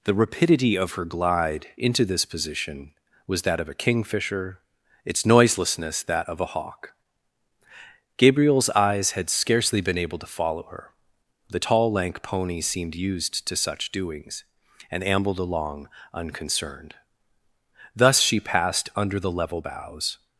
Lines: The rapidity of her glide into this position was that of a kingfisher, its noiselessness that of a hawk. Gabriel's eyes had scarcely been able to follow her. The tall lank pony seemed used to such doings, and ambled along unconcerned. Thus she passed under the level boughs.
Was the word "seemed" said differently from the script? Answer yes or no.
no